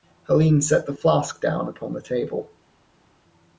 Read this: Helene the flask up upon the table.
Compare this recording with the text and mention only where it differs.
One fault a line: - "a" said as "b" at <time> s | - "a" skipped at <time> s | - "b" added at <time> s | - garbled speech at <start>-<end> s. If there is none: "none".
- "set" added at 0.6 s
- "up" said as "down" at 1.4 s